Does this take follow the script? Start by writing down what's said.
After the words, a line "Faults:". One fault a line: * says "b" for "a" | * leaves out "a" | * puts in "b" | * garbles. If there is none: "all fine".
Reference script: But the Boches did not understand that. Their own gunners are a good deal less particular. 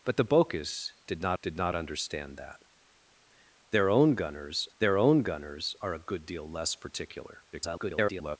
But the Boches did not did not understand that. Their own gunners their own gunners are a good deal less particular. [garbled]
Faults:
* puts in "did not"
* puts in "their own gunners"
* garbles